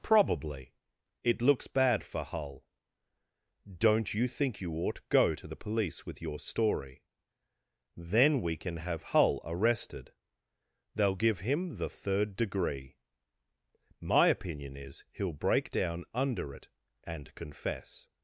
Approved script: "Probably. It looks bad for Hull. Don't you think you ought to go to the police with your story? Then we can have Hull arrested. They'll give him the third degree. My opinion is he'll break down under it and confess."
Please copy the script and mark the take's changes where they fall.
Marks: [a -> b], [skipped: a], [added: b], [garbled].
"Probably. It looks bad for Hull. Don't you think you ought [skipped: to] go to the police with your story? Then we can have Hull arrested. They'll give him the third degree. My opinion is he'll break down under it and confess."